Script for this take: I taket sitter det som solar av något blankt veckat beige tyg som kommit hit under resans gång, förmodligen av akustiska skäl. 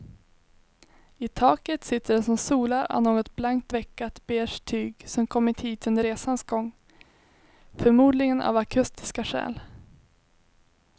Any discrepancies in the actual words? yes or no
no